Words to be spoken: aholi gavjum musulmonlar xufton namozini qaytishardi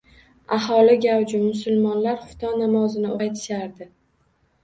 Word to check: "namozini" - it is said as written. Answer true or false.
true